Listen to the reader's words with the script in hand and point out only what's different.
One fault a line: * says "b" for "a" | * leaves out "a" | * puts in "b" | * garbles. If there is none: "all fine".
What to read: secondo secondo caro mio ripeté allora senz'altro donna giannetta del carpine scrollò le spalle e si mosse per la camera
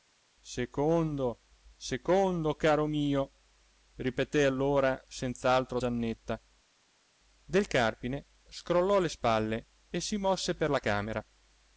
* leaves out "donna"